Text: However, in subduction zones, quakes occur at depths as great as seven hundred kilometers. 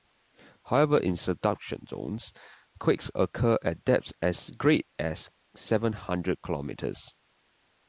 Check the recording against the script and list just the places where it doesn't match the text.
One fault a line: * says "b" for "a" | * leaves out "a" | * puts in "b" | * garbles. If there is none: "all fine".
all fine